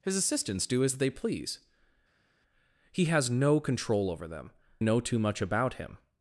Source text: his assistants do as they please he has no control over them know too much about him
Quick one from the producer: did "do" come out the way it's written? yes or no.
yes